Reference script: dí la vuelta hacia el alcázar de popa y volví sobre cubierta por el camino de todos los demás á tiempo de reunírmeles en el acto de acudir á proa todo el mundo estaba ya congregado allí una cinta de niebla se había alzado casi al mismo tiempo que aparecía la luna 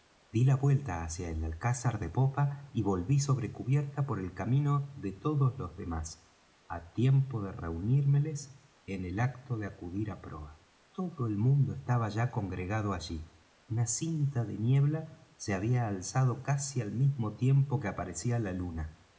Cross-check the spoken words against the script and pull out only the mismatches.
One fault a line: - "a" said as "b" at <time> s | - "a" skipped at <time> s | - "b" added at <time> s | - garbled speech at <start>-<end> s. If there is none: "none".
none